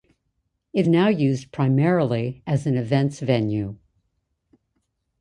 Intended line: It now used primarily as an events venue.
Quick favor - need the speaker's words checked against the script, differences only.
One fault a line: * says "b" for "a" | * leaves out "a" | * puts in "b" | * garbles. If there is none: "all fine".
all fine